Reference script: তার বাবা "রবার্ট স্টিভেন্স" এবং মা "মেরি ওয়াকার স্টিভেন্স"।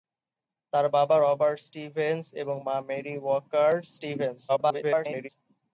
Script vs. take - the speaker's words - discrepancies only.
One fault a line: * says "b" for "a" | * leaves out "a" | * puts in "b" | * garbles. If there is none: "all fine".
* garbles